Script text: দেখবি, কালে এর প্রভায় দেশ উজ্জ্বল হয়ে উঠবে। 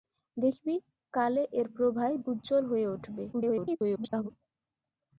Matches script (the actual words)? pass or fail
fail